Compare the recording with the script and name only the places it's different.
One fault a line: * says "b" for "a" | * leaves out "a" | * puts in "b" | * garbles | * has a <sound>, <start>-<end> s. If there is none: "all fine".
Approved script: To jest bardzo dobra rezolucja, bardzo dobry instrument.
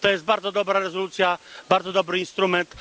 all fine